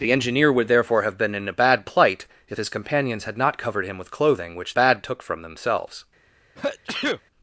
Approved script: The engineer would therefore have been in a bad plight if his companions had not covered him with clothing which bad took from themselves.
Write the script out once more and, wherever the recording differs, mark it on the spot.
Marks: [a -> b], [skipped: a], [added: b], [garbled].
The engineer would therefore have been in a bad plight if his companions had not covered him with clothing which bad took from themselves.